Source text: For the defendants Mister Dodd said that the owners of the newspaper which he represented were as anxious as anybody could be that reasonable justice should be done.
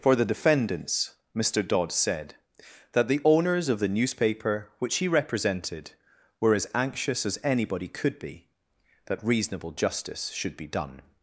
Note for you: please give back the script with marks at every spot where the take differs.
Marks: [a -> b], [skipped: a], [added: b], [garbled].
For the defendants Mister Dodd said that the owners of the newspaper which he represented were as anxious as anybody could be that reasonable justice should be done.